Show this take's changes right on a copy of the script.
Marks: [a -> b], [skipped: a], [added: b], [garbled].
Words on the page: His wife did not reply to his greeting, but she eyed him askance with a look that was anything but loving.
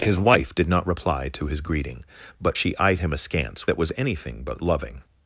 His wife did not reply to his greeting, but she eyed him askance [skipped: with a look] that was anything but loving.